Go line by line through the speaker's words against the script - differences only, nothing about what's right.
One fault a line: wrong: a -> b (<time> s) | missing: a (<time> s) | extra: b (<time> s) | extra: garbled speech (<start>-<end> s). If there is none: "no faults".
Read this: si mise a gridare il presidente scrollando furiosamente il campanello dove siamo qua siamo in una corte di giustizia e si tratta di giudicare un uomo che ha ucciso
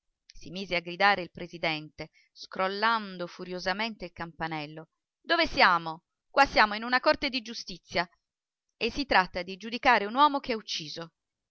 no faults